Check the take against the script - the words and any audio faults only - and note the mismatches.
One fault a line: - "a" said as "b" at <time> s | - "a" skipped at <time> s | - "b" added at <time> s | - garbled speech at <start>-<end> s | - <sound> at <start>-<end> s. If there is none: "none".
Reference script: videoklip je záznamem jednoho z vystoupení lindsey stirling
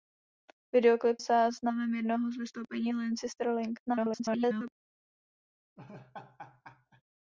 - "je" skipped at 1.2 s
- garbled speech at 3.9-4.7 s
- laugh at 5.8-7.0 s